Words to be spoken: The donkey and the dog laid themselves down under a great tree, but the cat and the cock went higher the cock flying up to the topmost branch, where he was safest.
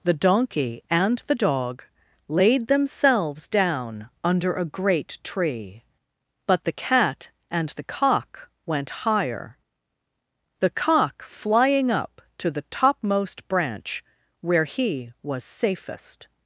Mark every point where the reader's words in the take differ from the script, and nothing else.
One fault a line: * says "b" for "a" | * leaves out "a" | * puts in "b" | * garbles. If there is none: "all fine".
all fine